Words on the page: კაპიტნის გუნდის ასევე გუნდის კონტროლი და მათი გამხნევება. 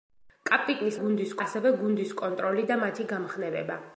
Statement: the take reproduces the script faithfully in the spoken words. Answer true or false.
true